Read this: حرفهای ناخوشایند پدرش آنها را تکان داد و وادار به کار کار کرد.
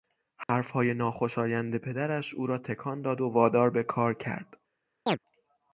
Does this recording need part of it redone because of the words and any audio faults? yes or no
yes